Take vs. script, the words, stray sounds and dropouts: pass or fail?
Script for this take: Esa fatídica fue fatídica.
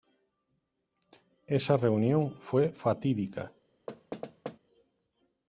fail